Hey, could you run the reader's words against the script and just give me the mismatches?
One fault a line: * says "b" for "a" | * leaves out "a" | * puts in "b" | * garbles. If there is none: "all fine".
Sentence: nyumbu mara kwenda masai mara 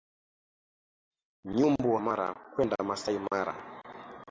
all fine